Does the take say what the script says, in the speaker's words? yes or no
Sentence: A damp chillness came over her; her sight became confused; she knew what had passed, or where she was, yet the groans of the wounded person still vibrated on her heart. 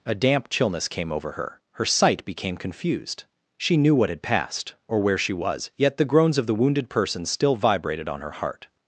yes